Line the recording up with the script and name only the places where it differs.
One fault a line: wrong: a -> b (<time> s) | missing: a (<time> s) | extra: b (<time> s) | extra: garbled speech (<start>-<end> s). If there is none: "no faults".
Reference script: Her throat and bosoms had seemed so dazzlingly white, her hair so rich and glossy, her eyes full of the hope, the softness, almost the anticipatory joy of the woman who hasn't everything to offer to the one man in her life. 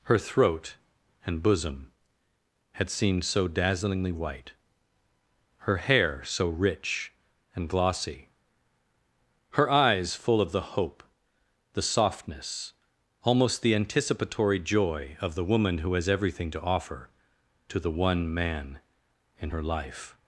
wrong: bosoms -> bosom (1.4 s)
wrong: hasn't -> has (15.9 s)